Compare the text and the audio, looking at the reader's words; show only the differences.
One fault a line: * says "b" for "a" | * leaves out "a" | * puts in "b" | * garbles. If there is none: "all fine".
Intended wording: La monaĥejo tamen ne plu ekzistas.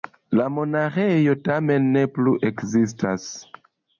all fine